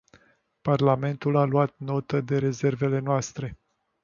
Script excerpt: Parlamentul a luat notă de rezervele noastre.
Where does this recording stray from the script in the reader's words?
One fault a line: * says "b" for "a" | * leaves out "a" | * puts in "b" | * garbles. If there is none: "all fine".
all fine